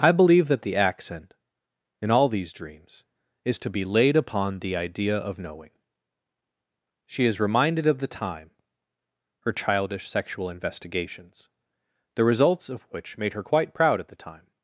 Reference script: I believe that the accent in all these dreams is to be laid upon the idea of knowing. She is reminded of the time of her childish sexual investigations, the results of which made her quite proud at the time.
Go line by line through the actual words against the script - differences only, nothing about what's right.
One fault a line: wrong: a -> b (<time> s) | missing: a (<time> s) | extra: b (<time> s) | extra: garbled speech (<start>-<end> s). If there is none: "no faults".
missing: of (8.5 s)